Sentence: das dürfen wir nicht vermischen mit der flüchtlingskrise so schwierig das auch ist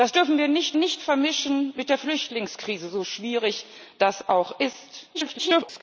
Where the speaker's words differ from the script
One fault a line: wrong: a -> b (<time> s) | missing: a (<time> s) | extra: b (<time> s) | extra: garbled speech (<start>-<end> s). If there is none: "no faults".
extra: nicht (0.7 s)
extra: garbled speech (5.1-5.8 s)